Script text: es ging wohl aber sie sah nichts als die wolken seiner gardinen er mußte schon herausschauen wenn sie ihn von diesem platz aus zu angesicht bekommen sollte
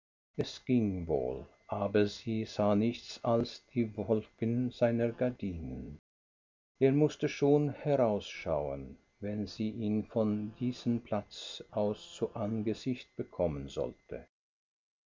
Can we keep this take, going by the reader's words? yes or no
yes